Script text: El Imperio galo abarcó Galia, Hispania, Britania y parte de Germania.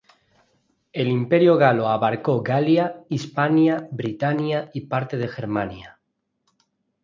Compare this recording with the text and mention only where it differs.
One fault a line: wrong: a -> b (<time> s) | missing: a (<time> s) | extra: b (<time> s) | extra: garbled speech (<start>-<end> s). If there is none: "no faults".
no faults